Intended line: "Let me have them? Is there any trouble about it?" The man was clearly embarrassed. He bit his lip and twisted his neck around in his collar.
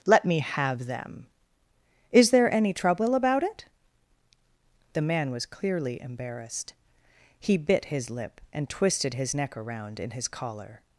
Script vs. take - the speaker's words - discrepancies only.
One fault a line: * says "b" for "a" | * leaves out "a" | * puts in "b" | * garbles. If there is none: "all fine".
all fine